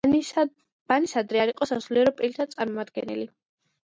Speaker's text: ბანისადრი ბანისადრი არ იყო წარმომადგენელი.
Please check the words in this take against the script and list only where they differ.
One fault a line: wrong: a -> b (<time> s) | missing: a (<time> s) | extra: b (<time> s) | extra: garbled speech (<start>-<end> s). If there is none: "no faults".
missing: ბანისადრი (1.4 s)
extra: სასულიერო პირთა (1.7 s)